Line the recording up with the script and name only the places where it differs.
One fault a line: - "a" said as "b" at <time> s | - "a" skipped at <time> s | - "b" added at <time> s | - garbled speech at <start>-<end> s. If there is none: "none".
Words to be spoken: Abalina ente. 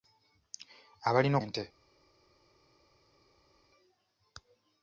none